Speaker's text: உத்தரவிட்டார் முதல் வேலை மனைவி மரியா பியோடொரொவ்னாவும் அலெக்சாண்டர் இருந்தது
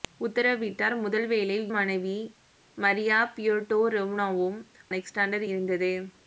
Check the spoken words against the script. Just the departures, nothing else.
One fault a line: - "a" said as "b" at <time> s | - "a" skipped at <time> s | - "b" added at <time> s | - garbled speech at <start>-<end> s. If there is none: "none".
none